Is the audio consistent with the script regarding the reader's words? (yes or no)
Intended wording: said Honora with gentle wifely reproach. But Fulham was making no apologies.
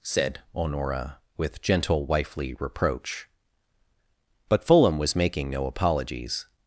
yes